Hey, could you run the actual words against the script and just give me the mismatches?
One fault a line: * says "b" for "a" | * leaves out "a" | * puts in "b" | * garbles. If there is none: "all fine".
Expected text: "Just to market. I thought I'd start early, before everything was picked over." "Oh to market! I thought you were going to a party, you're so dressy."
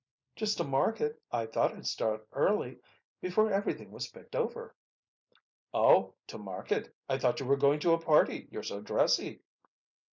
all fine